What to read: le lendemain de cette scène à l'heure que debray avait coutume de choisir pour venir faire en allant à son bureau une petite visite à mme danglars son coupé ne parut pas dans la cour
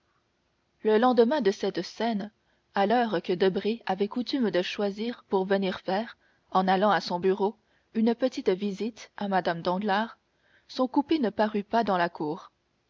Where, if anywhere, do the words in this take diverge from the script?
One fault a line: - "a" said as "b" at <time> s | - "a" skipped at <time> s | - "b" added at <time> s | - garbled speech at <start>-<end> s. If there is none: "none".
none